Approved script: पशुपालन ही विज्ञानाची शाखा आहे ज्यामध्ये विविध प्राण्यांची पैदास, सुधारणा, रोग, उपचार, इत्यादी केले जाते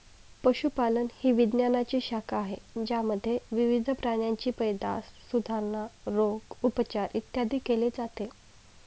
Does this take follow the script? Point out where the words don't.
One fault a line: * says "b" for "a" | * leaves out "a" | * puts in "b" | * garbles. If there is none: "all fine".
all fine